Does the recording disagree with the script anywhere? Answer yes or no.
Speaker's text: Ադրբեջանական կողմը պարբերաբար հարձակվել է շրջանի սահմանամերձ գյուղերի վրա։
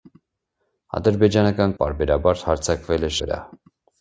yes